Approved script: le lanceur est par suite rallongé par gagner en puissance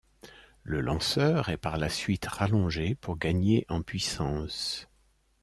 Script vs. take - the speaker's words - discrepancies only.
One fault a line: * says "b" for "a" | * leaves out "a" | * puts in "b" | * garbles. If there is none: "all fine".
* puts in "la"
* says "pour" for "par"